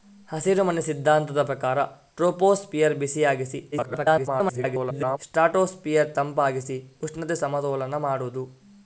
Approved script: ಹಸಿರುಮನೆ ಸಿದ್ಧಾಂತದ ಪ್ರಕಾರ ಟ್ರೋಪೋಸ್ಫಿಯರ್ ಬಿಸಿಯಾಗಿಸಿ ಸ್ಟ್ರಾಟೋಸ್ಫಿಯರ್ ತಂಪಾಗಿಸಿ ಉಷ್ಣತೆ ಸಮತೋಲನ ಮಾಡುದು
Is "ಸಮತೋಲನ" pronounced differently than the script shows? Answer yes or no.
no